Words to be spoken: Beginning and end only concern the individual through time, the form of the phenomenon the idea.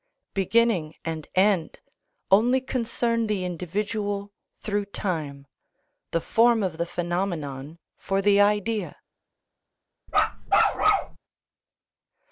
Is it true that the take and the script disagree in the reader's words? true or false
true